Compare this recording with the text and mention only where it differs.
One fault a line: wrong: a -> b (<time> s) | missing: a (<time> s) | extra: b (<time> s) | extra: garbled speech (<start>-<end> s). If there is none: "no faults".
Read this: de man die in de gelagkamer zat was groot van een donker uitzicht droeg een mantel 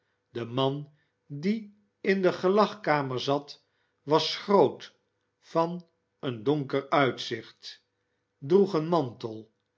no faults